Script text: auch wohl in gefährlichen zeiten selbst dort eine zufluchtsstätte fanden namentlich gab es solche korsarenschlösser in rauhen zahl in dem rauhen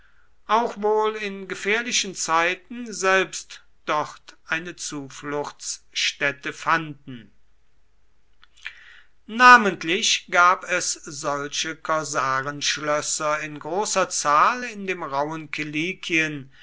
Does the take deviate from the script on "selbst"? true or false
false